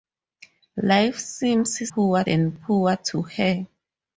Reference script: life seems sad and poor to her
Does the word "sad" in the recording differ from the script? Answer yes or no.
yes